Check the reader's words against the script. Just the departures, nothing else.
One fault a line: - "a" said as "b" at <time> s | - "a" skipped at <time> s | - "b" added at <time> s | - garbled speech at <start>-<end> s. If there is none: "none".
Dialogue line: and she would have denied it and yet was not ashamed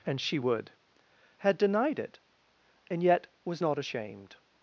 - "have" said as "had" at 1.4 s